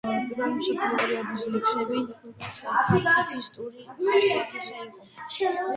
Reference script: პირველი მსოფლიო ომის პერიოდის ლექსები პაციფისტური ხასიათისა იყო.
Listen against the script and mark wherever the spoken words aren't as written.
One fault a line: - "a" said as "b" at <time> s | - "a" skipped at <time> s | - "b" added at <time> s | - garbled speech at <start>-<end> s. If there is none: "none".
- "ომის" skipped at 0.9 s